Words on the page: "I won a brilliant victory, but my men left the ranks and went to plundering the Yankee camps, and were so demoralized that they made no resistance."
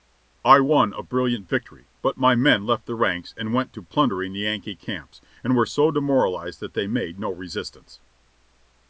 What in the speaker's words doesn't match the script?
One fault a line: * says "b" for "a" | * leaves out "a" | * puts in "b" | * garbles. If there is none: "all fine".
all fine